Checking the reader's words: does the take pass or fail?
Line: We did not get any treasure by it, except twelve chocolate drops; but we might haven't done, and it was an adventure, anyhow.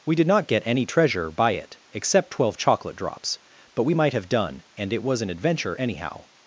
fail